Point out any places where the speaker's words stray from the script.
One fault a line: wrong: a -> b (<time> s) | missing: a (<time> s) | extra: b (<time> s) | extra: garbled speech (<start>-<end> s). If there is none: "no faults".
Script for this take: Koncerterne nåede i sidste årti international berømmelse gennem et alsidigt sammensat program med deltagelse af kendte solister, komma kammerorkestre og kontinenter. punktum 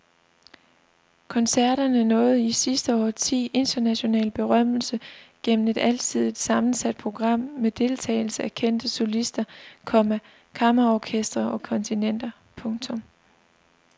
no faults